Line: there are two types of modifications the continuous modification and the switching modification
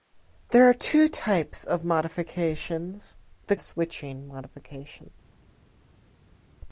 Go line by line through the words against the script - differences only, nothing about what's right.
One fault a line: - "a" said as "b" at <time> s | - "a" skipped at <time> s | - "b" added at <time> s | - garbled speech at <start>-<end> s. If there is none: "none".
- "continuous modification and" skipped at 3.5 s